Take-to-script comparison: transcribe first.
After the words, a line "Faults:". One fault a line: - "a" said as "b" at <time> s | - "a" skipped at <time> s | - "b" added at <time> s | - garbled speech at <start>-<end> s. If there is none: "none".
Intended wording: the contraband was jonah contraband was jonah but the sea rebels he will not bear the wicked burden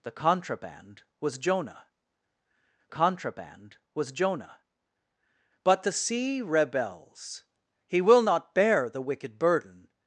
the contraband was jonah contraband was jonah but the sea rebels he will not bear the wicked burden
Faults:
none